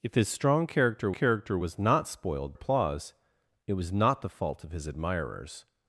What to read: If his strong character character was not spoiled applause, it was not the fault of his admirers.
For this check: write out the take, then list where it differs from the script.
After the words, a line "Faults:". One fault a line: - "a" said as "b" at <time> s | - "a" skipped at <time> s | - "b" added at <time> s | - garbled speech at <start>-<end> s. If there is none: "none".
If his strong character character was not spoiled applause, it was not the fault of his admirers.
Faults:
none